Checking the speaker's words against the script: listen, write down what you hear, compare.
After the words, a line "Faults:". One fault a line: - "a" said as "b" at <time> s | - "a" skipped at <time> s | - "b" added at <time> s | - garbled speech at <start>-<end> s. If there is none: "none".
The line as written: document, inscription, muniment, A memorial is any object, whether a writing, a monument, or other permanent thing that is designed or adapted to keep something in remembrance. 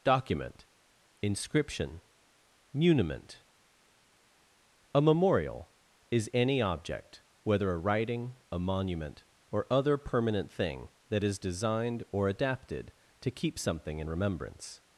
document, inscription, muniment, A memorial is any object, whether a writing, a monument, or other permanent thing that is designed or adapted to keep something in remembrance.
Faults:
none